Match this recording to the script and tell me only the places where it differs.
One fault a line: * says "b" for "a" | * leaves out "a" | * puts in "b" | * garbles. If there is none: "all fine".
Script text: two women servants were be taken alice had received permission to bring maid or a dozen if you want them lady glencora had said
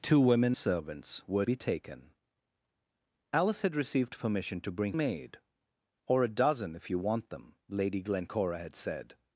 all fine